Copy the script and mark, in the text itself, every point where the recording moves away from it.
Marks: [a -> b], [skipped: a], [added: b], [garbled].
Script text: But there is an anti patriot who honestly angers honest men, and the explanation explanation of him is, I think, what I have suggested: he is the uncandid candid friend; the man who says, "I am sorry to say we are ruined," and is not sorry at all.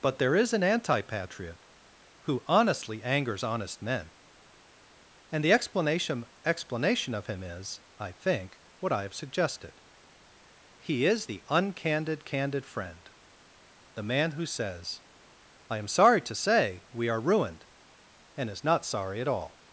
But there is an anti patriot who honestly angers honest men, and the explanation explanation of him is, I think, what I have suggested: he is the uncandid candid friend; the man who says, "I am sorry to say we are ruined," and is not sorry at all.